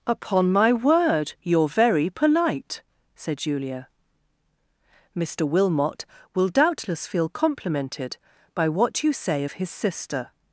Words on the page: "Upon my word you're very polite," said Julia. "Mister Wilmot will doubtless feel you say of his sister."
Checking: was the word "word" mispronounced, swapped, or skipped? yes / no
no